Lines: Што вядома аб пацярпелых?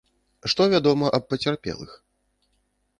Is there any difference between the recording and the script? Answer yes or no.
no